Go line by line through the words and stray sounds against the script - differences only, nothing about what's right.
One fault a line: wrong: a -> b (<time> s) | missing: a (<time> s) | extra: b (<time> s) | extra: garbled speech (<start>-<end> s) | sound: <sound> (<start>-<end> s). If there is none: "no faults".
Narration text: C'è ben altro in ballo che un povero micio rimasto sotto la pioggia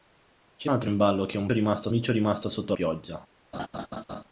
missing: ben (0.7 s)
wrong: povero -> rimasto (1.5 s)
missing: la (2.7 s)
sound: laugh (3.5-4.2 s)